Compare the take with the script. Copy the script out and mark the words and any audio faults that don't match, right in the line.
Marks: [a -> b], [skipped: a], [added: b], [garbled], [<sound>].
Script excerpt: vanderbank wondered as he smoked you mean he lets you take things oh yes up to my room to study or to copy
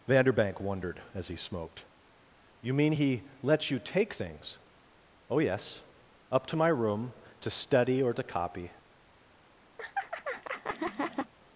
vanderbank wondered as he smoked you mean he lets you take things oh yes up to my room to study or to copy [laugh]